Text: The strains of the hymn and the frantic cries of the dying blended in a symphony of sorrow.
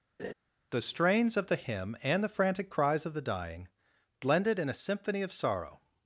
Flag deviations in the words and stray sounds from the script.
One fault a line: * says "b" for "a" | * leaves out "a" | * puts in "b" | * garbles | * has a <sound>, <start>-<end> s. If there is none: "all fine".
* has a laugh, 0.2-0.3 s